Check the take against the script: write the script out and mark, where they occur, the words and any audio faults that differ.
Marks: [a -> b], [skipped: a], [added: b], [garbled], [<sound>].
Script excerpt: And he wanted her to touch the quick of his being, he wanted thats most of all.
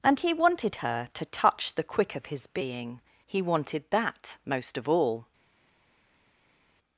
And he wanted her to touch the quick of his being, he wanted [thats -> that] most of all.